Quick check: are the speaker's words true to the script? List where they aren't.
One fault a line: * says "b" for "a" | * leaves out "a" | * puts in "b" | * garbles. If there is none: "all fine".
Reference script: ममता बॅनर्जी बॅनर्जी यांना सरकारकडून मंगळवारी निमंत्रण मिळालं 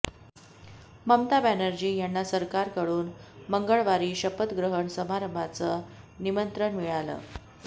* leaves out "बॅनर्जी"
* puts in "शपथग्रहण समारंभाचं"